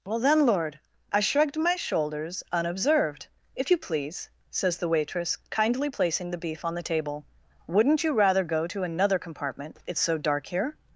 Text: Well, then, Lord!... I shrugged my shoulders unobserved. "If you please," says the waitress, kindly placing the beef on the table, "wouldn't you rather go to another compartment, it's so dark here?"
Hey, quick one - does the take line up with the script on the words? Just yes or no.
yes